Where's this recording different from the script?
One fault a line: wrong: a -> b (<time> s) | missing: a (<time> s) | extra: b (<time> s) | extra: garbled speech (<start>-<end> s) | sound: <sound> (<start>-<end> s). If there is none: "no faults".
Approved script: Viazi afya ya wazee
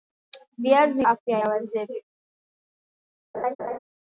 sound: laugh (3.3-3.8 s)